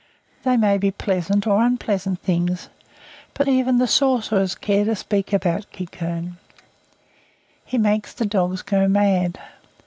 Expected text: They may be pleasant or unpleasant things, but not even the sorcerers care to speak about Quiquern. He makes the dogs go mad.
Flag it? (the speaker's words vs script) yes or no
yes